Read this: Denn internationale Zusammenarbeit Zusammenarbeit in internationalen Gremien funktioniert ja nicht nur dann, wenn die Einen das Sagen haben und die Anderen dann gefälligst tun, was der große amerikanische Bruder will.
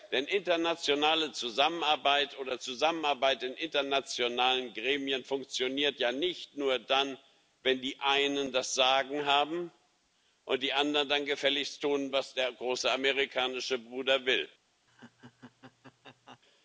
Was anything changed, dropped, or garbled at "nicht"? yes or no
no